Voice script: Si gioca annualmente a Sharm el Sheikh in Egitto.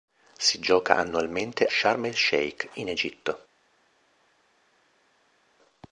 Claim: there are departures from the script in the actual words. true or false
true